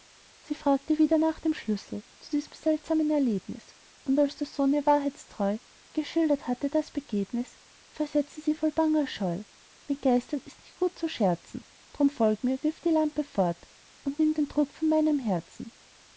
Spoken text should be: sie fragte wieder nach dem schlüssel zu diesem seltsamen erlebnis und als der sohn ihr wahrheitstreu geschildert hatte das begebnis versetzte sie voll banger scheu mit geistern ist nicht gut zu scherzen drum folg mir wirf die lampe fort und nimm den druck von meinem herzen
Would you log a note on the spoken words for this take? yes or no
no